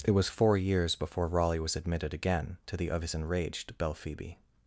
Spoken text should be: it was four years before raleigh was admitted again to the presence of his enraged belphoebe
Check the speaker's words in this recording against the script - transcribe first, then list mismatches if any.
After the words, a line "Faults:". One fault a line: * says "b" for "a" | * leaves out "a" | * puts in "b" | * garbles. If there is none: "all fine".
it was four years before raleigh was admitted again to the of his enraged belphoebe
Faults:
* leaves out "presence"